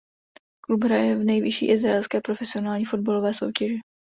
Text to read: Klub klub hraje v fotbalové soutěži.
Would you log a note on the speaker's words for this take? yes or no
yes